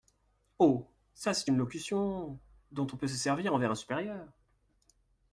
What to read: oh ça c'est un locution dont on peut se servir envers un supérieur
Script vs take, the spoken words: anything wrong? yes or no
yes